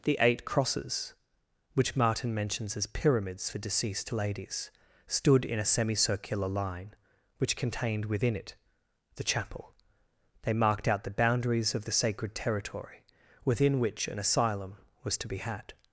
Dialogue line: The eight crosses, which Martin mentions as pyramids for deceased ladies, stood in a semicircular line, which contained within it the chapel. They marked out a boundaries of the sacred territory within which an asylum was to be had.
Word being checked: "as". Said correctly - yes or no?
yes